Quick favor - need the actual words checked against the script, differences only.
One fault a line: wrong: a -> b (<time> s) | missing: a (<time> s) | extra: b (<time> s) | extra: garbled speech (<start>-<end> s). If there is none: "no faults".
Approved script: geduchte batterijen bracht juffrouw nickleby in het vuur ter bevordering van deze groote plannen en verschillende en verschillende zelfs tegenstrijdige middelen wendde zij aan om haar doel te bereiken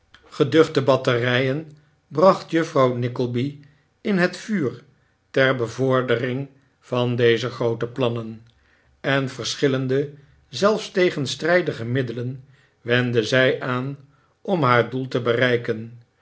missing: en verschillende (10.1 s)